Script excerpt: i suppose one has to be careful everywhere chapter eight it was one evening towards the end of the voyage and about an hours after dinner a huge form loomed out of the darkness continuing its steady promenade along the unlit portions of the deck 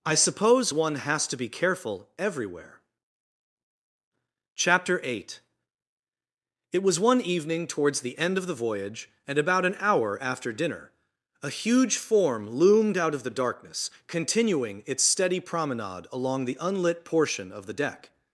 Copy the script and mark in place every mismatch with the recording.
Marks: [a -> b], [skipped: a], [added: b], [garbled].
i suppose one has to be careful everywhere chapter eight it was one evening towards the end of the voyage and about an [hours -> hour] after dinner a huge form loomed out of the darkness continuing its steady promenade along the unlit [portions -> portion] of the deck